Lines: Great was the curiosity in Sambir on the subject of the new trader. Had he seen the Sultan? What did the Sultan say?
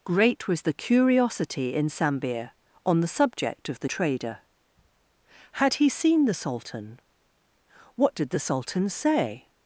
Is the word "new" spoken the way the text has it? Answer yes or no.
no